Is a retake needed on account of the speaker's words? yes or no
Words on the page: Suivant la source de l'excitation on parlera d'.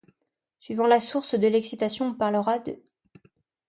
no